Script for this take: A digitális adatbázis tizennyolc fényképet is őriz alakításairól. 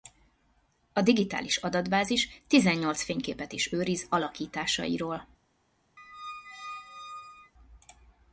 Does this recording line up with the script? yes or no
yes